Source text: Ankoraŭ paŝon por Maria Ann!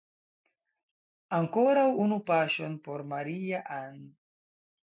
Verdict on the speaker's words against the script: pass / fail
fail